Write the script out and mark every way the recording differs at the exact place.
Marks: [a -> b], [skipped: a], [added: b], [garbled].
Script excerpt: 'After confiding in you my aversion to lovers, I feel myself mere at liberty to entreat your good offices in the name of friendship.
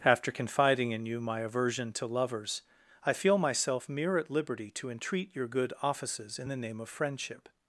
'After confiding in you my aversion to lovers, I feel myself mere at liberty to entreat your good offices in the name of friendship.